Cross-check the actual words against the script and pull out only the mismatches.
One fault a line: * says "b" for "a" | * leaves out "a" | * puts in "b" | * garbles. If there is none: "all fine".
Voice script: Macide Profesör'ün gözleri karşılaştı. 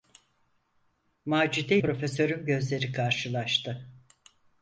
all fine